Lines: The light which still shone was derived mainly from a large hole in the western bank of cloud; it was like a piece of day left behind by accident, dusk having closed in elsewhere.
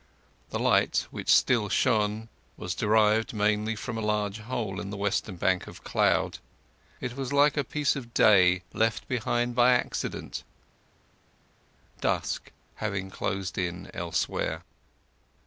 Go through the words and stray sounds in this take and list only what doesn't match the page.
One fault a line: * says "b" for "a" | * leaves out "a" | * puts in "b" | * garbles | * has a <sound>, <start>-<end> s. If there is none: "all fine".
all fine